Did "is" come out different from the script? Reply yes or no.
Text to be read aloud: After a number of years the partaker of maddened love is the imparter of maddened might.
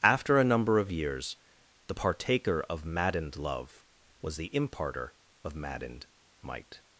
yes